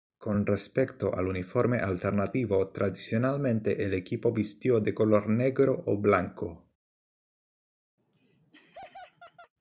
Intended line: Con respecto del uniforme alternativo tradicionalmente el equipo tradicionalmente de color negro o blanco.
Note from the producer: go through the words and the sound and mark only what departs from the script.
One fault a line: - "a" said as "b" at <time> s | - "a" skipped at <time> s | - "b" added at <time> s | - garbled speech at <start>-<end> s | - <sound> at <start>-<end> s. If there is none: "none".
- "del" said as "al" at 1.1 s
- "tradicionalmente" said as "vistió" at 4.3 s
- laugh at 8.0-9.5 s